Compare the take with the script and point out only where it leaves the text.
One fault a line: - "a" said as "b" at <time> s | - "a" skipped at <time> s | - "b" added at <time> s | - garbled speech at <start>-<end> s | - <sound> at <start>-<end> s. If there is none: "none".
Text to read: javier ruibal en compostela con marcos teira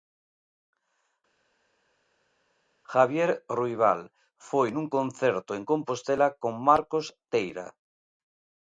- "foi nun concerto" added at 4.5 s